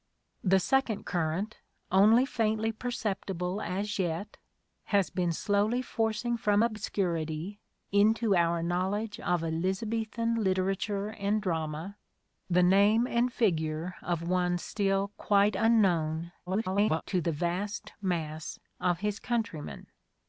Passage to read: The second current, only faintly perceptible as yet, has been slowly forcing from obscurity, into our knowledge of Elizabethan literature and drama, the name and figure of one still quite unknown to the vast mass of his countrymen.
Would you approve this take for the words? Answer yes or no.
no